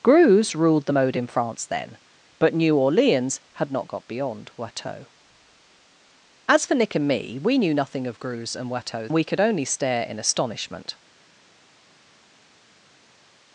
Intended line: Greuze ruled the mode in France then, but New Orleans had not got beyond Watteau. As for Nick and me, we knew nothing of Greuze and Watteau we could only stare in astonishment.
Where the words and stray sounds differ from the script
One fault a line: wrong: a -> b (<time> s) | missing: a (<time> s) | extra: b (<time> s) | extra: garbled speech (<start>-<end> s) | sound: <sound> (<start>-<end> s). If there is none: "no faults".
no faults